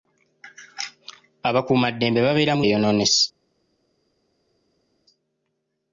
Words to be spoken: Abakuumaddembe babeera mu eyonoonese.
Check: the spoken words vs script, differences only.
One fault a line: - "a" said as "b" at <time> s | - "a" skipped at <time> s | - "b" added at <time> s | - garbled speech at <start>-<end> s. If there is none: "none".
none